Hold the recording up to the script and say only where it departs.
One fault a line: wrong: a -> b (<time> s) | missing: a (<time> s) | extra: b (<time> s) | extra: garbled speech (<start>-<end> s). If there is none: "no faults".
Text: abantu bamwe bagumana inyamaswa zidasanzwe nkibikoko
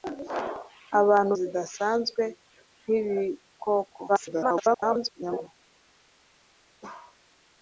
missing: bamwe bagumana inyamaswa (1.3 s)
extra: garbled speech (4.1-5.5 s)